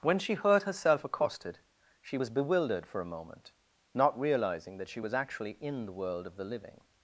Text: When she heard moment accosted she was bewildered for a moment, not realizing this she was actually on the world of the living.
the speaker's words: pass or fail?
fail